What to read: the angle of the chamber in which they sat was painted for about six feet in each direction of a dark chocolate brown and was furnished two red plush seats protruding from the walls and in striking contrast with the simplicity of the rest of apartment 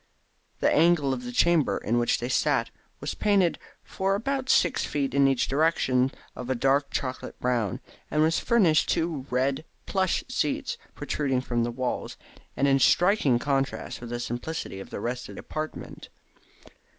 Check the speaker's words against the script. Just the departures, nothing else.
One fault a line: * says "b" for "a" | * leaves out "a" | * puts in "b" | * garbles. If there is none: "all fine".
all fine